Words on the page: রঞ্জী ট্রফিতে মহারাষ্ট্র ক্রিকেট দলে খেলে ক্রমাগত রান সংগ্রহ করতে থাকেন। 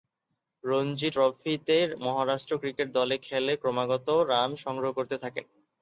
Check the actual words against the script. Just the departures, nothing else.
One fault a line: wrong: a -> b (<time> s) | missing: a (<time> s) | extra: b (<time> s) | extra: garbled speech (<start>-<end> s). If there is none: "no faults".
no faults